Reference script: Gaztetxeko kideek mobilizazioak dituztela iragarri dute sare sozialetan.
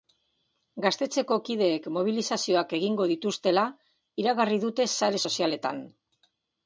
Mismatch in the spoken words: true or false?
true